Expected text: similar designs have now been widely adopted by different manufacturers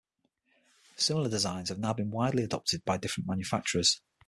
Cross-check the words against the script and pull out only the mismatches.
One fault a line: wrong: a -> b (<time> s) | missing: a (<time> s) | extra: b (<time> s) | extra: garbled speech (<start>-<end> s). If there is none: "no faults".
no faults